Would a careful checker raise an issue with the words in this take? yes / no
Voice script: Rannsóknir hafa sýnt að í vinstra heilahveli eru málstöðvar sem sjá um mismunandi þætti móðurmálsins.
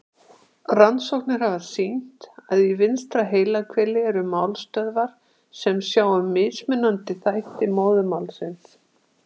no